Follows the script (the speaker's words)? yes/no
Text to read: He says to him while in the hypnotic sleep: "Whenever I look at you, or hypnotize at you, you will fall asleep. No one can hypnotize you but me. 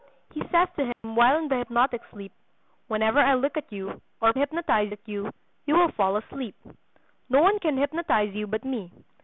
yes